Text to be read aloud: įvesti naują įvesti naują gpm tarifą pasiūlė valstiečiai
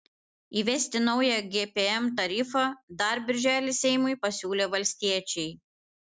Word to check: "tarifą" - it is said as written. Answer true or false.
false